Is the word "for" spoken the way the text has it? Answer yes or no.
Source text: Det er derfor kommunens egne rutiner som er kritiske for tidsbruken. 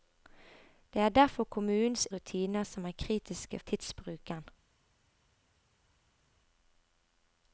no